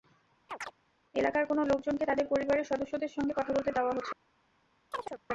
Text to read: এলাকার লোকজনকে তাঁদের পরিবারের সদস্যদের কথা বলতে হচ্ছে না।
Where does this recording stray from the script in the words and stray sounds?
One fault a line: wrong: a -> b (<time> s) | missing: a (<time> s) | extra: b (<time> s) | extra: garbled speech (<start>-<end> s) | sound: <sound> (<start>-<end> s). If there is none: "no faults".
sound: chirp (0.5-0.7 s)
extra: কোনো (1.5 s)
extra: সঙ্গে (3.1 s)
extra: দেওয়া (3.7 s)
sound: chirp (4.9-5.2 s)